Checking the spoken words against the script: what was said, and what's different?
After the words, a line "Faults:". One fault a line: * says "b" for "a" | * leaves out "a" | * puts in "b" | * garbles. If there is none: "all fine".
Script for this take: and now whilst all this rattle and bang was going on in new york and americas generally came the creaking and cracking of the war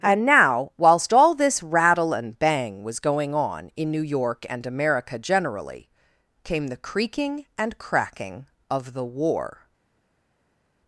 and now whilst all this rattle and bang was going on in new york and america generally came the creaking and cracking of the war
Faults:
* says "america" for "americas"